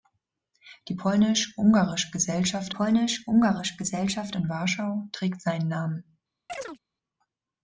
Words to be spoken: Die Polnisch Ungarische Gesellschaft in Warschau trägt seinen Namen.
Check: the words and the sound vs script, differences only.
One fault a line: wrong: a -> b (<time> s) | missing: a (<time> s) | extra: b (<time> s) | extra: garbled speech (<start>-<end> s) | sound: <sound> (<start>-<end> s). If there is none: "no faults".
extra: Polnisch Ungarische Gesellschaft (2.7 s)
sound: chirp (6.5-6.8 s)